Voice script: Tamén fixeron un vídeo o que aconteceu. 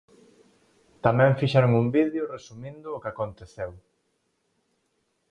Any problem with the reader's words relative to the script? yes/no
yes